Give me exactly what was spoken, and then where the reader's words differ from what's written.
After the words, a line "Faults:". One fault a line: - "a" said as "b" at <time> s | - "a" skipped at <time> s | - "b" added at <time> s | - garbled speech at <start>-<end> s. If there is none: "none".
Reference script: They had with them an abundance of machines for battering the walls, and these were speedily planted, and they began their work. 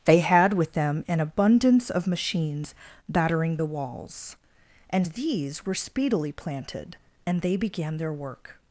They had with them an abundance of machines battering the walls, and these were speedily planted, and they began their work.
Faults:
- "for" skipped at 2.7 s